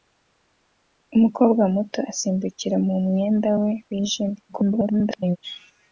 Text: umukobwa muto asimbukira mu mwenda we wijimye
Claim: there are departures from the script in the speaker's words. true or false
true